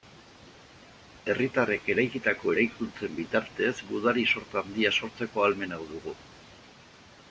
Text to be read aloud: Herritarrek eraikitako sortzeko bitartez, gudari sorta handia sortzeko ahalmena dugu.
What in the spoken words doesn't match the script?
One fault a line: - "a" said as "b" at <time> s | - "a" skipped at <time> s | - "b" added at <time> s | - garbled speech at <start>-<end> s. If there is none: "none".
- "sortzeko" said as "eraikuntzen" at 2.5 s